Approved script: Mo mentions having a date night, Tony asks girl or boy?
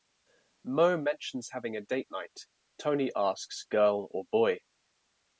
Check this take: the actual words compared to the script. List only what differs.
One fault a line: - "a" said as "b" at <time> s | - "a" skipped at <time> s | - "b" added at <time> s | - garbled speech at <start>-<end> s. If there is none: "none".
none